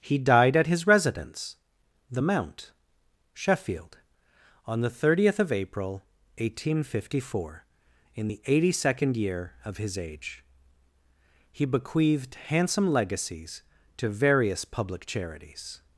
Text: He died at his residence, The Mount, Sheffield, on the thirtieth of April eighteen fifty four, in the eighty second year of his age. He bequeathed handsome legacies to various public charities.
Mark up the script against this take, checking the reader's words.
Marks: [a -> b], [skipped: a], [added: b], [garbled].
He died at his residence, The Mount, Sheffield, on the thirtieth of April eighteen fifty four, in the eighty second year of his age. He bequeathed handsome legacies to various public charities.